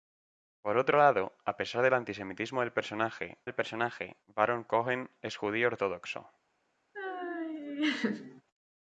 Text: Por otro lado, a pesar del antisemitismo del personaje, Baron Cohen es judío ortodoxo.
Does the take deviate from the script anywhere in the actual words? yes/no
yes